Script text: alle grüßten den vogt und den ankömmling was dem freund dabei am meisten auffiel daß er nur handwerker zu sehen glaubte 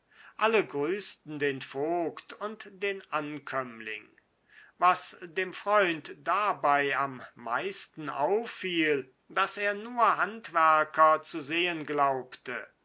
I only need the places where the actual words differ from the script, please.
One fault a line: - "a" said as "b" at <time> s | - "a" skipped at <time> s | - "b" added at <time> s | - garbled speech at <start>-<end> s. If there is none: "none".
none